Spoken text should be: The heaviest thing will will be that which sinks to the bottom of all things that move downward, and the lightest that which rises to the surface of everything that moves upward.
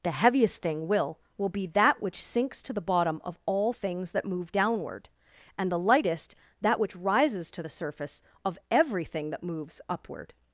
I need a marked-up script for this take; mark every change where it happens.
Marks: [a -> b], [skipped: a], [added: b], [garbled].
The heaviest thing will will be that which sinks to the bottom of all things that move downward, and the lightest that which rises to the surface of everything that moves upward.